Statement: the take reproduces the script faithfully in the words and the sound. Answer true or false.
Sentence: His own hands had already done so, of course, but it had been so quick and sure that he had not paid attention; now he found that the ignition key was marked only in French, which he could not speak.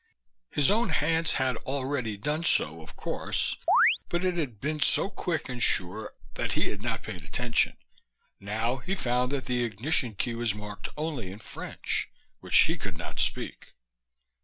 false